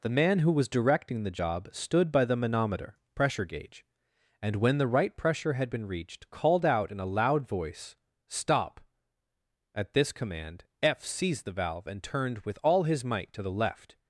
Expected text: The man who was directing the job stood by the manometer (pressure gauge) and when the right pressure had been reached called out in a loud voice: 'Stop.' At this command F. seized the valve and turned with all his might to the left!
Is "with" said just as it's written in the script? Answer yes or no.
yes